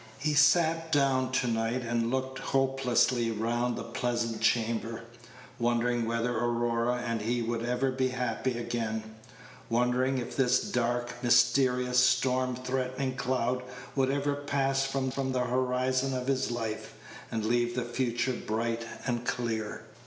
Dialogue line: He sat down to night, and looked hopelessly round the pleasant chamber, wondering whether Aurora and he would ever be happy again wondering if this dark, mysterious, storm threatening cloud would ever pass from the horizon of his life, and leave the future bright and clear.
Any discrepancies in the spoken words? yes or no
yes